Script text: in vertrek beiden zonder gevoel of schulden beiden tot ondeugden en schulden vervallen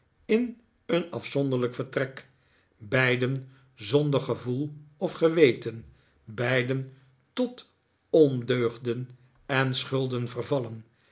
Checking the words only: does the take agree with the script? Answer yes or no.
no